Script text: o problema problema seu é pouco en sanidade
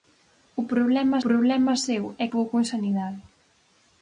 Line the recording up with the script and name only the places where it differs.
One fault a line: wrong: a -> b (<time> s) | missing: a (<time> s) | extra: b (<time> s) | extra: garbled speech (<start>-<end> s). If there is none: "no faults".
no faults